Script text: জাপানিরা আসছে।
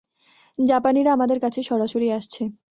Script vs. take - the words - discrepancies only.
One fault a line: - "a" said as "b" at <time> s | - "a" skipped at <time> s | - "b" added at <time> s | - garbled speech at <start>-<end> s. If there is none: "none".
- "আমাদের কাছে সরাসরি" added at 1.1 s